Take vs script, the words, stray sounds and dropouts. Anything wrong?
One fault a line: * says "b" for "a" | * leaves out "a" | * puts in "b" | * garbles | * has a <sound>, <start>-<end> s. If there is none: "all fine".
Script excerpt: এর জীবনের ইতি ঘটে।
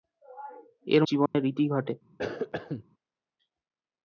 * has a dropout, 1.3-1.3 s
* has a cough, 2.2-2.8 s